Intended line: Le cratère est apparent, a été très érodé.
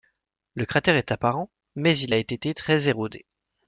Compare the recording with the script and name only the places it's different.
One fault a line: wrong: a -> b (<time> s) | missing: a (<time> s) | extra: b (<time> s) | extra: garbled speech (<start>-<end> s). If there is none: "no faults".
extra: mais il (1.8 s)